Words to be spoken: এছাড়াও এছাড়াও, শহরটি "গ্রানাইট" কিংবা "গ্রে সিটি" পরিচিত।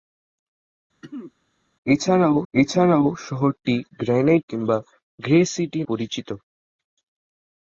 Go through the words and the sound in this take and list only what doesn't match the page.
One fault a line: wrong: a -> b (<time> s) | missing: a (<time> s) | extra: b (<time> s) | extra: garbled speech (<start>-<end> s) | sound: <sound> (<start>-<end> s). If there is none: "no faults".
sound: throat clearing (1.0-1.3 s)